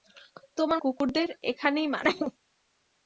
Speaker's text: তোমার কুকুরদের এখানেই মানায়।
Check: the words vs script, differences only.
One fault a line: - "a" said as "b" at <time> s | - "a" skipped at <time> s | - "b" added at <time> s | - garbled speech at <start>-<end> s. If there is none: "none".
none